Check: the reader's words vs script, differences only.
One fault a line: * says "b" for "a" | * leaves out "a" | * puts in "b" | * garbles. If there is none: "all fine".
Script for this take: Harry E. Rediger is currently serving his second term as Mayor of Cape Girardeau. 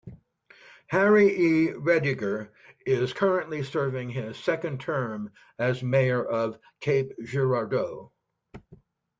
all fine